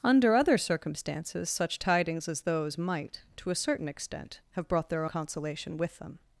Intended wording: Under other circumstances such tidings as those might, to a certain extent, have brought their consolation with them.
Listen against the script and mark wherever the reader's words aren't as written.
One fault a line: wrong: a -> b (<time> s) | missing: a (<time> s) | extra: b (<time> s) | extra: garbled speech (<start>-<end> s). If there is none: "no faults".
no faults